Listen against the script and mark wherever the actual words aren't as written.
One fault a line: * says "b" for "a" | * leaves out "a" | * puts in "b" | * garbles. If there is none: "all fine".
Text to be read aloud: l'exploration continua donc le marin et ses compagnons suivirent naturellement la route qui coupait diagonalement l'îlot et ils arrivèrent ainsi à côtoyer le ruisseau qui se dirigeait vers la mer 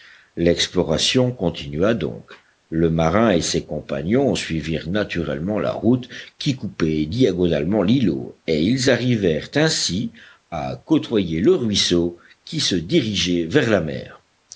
all fine